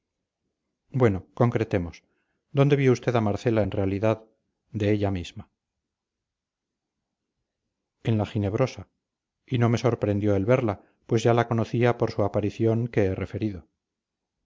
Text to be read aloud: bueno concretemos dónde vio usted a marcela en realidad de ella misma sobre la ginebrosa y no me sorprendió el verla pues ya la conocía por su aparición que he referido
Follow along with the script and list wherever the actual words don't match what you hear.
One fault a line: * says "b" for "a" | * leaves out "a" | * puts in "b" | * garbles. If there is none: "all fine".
* says "en" for "sobre"